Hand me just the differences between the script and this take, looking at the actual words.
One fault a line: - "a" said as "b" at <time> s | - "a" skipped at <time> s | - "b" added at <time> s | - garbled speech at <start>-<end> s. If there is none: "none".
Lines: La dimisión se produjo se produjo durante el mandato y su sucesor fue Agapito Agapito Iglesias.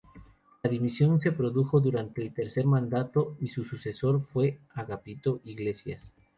- "se produjo" skipped at 1.8 s
- "tercer" added at 2.3 s
- "Agapito" skipped at 5.4 s